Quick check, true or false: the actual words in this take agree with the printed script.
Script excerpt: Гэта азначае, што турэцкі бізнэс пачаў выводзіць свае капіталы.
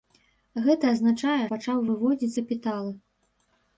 false